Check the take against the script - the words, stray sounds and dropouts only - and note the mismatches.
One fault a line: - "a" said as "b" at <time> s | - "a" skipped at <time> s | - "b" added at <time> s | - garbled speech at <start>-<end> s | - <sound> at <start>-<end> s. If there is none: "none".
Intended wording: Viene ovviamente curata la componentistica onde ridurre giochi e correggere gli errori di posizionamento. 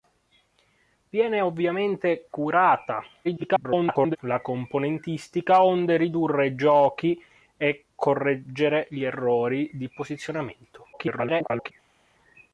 - garbled speech at 3.2-4.2 s
- garbled speech at 10.9-11.7 s